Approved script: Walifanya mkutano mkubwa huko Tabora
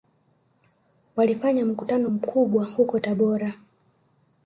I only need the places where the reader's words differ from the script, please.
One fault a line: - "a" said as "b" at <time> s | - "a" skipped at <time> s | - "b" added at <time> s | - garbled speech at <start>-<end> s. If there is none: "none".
none